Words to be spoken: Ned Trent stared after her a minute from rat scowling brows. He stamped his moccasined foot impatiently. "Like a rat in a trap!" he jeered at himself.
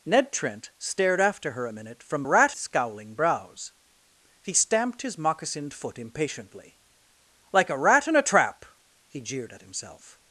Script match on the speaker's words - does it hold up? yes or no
yes